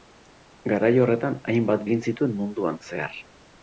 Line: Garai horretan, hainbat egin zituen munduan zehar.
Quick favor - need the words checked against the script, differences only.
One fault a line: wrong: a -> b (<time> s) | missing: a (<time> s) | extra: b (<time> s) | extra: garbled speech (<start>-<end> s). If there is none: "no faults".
no faults